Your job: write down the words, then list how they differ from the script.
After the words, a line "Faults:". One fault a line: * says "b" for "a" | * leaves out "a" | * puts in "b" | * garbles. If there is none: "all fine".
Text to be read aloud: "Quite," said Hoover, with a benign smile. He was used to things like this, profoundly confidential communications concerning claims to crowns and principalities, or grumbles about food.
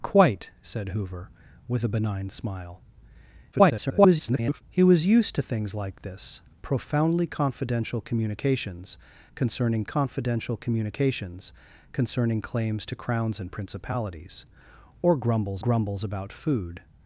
"Quite," said Hoover, with a benign smile. [garbled] He was used to things like this, profoundly confidential communications concerning confidential communications concerning claims to crowns and principalities, or grumbles grumbles about food.
Faults:
* garbles
* puts in "confidential communications concerning"
* puts in "grumbles"